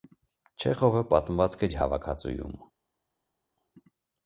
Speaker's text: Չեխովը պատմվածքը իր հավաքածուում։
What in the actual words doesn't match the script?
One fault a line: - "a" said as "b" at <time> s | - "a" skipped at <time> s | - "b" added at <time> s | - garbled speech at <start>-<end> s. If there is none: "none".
none